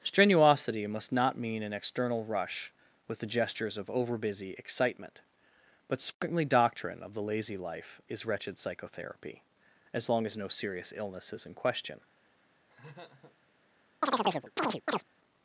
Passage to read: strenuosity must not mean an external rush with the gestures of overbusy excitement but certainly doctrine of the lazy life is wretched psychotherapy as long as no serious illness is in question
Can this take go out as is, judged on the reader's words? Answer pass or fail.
pass